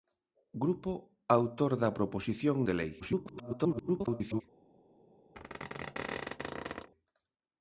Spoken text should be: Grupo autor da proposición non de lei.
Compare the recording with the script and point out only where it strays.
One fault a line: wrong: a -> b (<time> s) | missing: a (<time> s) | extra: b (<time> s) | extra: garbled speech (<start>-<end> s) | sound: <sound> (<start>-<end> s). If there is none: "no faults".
missing: non (2.6 s)
extra: garbled speech (3.0-4.4 s)
sound: squeak (5.3-6.9 s)